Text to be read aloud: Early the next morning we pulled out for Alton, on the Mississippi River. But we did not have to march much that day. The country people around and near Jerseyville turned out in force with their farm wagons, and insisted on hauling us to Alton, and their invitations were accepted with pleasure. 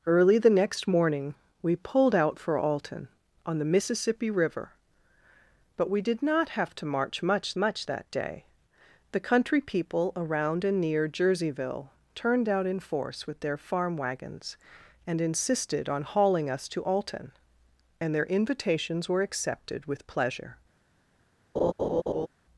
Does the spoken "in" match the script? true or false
true